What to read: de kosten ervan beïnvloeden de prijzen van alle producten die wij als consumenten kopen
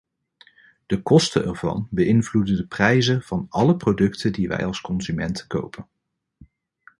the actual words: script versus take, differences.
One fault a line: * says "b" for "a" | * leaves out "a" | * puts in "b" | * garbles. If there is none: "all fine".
all fine